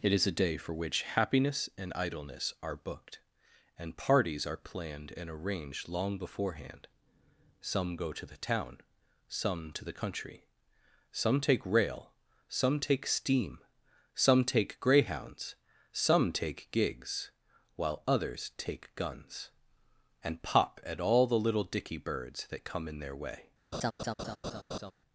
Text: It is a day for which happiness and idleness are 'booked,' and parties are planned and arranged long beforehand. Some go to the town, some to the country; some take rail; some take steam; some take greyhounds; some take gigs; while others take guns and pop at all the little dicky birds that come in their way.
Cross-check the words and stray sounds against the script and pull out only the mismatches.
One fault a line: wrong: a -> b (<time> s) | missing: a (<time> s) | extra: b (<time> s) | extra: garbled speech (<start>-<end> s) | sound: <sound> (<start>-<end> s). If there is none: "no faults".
sound: laugh (23.7-24.9 s)